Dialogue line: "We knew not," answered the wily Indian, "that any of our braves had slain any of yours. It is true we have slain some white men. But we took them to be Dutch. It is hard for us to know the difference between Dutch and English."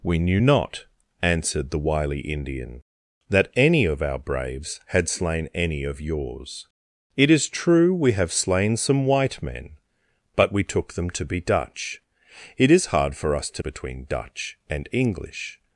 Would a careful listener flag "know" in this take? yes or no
yes